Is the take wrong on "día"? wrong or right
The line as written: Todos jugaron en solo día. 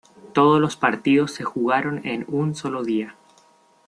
right